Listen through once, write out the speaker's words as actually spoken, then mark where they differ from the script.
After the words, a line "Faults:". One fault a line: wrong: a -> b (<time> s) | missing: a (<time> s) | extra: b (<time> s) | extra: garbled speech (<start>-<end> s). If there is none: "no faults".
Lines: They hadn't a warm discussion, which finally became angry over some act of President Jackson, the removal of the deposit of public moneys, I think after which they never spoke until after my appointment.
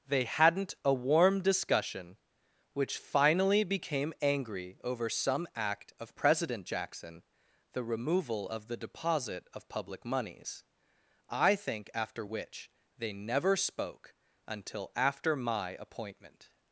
They hadn't a warm discussion, which finally became angry over some act of President Jackson, the removal of the deposit of public moneys, I think after which they never spoke until after my appointment.
Faults:
no faults